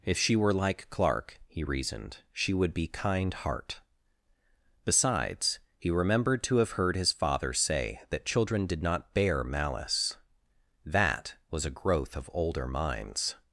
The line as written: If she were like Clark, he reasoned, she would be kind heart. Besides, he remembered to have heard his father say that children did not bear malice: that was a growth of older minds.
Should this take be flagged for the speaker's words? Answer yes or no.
no